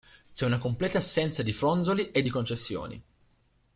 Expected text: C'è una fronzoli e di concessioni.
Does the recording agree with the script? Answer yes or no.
no